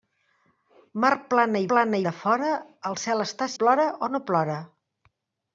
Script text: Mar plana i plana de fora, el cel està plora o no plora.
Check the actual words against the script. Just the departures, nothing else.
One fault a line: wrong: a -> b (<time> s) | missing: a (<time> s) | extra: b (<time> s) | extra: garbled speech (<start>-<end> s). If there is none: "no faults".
no faults